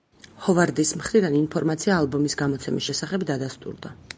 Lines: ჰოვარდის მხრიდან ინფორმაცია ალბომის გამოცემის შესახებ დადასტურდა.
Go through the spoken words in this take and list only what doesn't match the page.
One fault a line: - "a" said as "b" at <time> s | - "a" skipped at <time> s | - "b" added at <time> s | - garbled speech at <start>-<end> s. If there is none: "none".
none